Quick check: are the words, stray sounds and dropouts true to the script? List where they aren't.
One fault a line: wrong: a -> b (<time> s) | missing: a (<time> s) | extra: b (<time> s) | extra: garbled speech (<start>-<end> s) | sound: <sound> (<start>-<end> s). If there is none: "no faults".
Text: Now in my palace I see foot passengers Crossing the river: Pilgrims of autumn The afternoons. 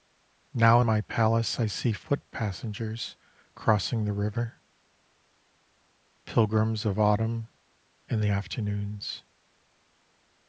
extra: In (8.1 s)